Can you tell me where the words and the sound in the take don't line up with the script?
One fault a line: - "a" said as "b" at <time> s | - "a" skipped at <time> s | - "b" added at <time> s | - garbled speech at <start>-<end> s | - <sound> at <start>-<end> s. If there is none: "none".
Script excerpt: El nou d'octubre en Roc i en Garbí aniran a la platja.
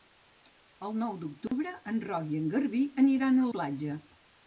- dropout at 1.5-1.5 s
- "la" skipped at 3.5 s